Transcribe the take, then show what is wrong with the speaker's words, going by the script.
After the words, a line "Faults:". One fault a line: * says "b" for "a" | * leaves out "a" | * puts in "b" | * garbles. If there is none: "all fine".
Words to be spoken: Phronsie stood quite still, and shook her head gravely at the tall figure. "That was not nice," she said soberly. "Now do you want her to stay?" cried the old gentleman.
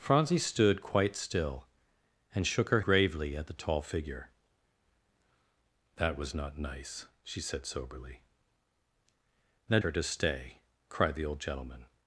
Phronsie stood quite still, and shook her gravely at the tall figure. "That was not nice," she said soberly. "Now her to stay?" cried the old gentleman.
Faults:
* leaves out "head"
* leaves out "do you want"